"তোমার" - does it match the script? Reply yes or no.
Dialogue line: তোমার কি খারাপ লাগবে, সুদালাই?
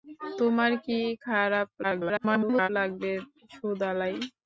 yes